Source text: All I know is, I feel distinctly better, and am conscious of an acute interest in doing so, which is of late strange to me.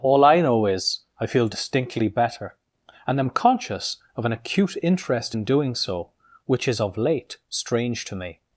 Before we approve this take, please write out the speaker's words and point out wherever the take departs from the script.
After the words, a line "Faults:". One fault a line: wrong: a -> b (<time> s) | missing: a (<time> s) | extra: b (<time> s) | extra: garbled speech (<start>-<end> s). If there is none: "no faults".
All I know is, I feel distinctly better, and am conscious of an acute interest in doing so, which is of late strange to me.
Faults:
no faults